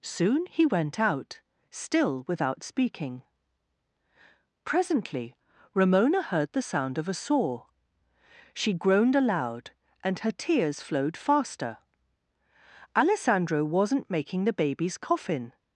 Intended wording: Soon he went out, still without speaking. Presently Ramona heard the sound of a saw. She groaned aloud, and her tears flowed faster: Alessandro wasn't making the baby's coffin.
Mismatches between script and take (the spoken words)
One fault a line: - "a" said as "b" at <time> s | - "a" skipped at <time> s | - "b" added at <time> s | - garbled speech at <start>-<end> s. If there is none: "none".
none